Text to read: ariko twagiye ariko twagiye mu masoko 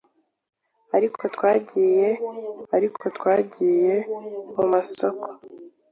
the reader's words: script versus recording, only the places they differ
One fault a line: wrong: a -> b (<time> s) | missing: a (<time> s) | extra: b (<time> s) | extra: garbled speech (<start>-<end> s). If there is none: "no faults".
no faults